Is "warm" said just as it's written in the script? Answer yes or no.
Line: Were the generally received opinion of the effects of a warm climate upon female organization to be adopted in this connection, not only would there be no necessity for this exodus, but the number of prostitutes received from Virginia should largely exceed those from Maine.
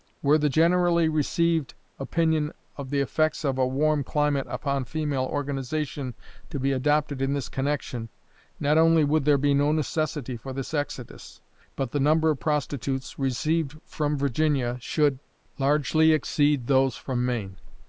yes